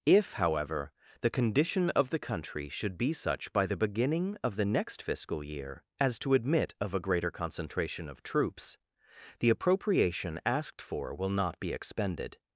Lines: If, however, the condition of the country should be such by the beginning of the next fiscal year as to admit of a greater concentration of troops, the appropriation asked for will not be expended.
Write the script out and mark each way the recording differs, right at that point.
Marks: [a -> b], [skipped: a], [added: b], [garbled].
If, however, the condition of the country should be such by the beginning of the next fiscal year as to admit of a greater concentration of troops, the appropriation asked for will not be expended.